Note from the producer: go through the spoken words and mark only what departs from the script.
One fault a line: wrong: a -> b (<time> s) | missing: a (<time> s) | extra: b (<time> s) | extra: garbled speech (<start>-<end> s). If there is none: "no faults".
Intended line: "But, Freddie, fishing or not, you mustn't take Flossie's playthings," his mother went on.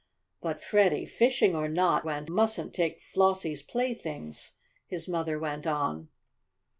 wrong: you -> went (2.0 s)